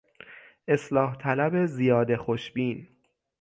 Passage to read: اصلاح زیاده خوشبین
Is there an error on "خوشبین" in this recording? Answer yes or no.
no